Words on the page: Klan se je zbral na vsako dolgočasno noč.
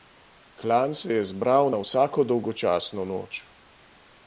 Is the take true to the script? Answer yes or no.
yes